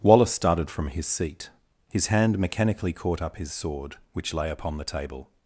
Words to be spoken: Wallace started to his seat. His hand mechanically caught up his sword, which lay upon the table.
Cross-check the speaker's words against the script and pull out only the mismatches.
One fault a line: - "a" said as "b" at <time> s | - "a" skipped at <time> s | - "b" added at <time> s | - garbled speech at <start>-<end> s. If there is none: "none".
- "to" said as "from" at 0.7 s